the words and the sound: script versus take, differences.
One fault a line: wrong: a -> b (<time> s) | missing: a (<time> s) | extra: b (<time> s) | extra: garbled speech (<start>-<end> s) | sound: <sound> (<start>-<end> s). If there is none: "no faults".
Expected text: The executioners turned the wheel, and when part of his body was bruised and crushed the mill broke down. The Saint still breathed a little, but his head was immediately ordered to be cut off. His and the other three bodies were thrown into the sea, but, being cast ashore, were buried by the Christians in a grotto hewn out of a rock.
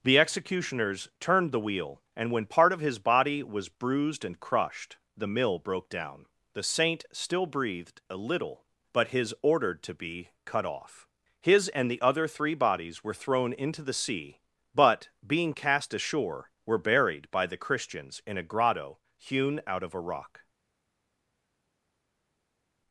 missing: head was immediately (9.3 s)